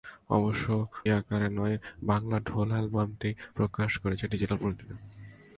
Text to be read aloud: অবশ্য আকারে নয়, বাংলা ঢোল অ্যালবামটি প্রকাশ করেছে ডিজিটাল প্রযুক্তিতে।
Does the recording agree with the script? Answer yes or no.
yes